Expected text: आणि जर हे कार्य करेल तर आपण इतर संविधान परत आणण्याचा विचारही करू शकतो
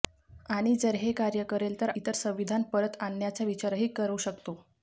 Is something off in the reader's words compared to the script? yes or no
yes